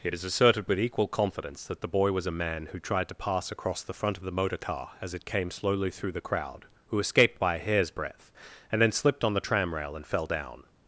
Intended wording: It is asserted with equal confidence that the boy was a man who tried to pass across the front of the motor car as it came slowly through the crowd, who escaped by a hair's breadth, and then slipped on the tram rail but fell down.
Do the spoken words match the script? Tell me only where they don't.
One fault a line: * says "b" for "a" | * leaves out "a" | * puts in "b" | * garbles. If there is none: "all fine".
* says "and" for "but"